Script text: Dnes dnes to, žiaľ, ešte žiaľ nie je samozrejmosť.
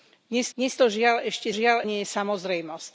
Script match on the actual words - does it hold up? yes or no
yes